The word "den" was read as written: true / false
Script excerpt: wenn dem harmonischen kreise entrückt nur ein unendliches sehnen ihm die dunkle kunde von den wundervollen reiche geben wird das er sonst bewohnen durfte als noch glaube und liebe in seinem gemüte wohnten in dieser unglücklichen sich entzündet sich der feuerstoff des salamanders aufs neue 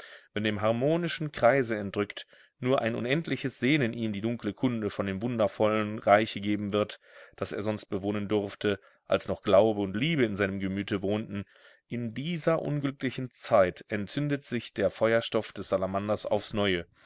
false